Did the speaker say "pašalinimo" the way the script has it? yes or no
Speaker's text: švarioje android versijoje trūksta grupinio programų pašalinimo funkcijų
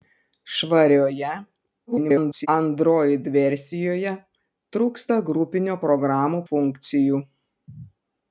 no